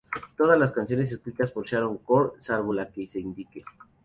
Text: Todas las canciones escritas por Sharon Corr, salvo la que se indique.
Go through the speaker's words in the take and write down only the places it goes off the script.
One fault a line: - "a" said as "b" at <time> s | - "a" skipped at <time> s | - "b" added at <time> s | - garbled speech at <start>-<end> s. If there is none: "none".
none